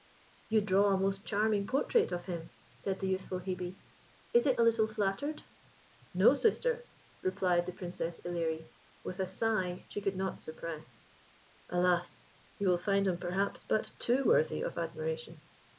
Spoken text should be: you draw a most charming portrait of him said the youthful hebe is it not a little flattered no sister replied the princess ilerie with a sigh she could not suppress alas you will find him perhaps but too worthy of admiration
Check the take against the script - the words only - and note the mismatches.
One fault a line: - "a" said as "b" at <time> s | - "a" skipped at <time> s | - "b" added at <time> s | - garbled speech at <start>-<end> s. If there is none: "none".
- "not" skipped at 4.6 s